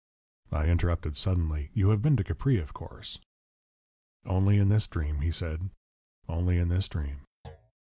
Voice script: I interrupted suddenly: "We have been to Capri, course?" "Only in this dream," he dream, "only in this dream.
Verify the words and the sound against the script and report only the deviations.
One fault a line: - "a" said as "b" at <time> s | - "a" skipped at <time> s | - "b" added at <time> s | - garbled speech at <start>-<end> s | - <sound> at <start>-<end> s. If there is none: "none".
- "We" said as "You" at 1.7 s
- "of" added at 2.6 s
- "dream" said as "said" at 5.3 s
- thud at 7.4-7.7 s